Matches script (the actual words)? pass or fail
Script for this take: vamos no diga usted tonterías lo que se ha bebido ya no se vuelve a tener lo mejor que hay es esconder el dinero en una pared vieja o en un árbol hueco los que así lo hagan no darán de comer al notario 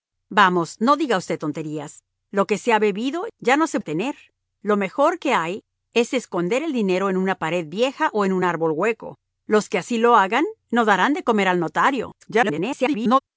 fail